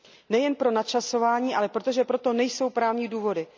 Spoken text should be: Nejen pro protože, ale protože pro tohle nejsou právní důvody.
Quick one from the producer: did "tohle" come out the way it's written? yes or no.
no